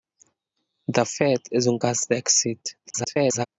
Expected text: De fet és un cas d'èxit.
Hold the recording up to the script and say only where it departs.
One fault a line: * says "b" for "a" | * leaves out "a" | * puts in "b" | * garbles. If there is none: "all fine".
* garbles